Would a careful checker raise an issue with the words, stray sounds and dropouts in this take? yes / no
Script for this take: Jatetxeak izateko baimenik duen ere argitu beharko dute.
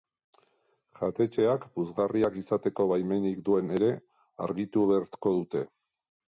yes